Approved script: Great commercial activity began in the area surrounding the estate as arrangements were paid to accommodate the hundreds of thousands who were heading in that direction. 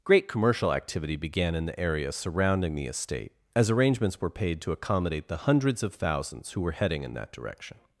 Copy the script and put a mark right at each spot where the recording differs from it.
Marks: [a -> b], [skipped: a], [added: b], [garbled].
Great commercial activity began in the area surrounding the estate as arrangements were paid to accommodate the hundreds of thousands who were heading in that direction.